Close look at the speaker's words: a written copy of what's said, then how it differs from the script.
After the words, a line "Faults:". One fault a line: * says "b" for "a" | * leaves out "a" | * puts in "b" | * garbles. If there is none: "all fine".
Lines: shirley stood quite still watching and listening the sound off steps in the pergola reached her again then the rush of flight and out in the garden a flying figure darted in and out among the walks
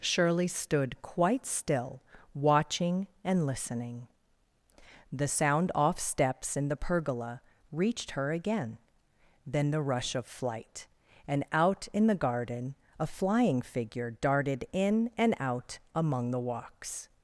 shirley stood quite still watching and listening the sound off steps in the pergola reached her again then the rush of flight and out in the garden a flying figure darted in and out among the walks
Faults:
all fine